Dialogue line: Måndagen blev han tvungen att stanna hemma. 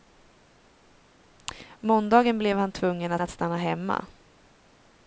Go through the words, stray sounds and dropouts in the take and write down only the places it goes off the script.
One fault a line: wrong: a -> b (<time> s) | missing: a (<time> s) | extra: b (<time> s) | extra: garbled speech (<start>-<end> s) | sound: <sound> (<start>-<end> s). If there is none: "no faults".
extra: att (3.2 s)